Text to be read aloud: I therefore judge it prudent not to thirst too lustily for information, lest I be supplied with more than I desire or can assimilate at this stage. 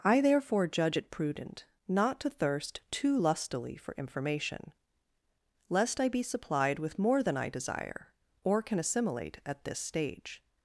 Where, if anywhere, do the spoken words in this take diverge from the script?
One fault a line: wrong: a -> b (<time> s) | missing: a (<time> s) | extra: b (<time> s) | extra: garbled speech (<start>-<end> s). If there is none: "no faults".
no faults